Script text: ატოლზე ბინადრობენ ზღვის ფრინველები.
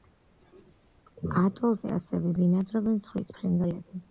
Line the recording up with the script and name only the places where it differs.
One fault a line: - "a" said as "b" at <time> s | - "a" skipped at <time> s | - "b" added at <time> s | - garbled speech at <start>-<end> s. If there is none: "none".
- "ასევე" added at 2.0 s